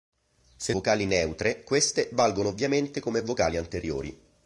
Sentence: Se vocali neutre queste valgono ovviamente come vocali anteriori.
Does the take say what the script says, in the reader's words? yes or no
yes